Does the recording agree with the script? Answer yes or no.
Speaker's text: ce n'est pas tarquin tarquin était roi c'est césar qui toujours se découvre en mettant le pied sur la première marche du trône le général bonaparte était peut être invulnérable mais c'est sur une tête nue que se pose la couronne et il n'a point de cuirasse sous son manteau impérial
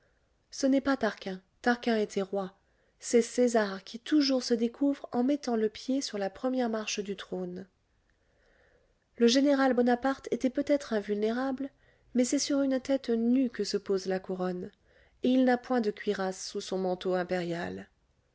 yes